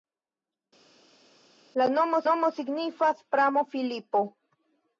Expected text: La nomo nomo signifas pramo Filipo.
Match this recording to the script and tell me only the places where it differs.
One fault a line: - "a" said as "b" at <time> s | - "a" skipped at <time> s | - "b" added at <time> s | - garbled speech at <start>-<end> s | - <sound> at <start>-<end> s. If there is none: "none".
none